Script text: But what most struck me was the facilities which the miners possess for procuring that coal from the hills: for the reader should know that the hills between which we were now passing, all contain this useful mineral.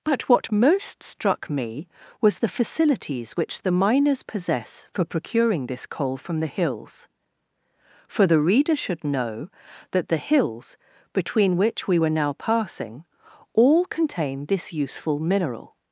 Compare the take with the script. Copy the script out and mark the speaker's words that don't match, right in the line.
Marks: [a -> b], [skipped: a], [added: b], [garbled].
But what most struck me was the facilities which the miners possess for procuring [that -> this] coal from the hills: for the reader should know that the hills between which we were now passing, all contain this useful mineral.